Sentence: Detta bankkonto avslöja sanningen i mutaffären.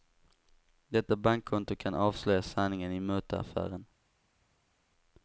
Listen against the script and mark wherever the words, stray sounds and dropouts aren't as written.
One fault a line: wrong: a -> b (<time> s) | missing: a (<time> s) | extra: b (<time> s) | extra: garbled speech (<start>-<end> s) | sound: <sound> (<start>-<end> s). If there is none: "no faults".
extra: kan (1.8 s)